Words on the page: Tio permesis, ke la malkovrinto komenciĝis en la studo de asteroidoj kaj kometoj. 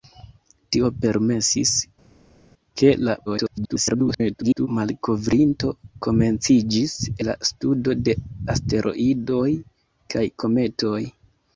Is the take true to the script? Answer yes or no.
no